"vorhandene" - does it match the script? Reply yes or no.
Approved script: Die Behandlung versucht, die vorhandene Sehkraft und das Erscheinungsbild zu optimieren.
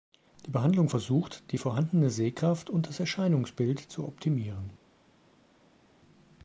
yes